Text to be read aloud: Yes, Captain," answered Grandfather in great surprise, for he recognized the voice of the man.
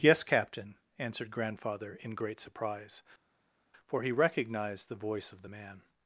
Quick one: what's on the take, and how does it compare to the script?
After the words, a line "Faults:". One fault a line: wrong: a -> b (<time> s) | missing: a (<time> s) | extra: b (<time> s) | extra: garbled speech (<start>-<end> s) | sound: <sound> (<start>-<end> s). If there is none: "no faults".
Yes, Captain," answered Grandfather in great surprise, for he recognized the voice of the man.
Faults:
no faults